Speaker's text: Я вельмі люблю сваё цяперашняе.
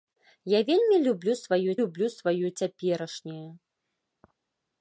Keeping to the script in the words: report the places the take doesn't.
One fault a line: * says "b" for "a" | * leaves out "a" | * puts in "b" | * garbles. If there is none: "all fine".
* puts in "люблю сваё"